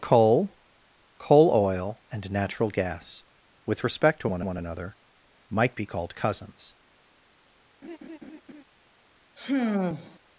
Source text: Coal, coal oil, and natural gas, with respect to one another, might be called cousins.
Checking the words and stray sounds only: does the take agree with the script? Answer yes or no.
no